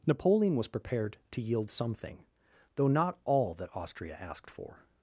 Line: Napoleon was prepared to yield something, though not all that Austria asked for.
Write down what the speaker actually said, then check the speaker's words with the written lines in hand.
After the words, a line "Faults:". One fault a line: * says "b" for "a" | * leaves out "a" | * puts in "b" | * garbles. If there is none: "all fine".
Napoleon was prepared to yield something, though not all that Austria asked for.
Faults:
all fine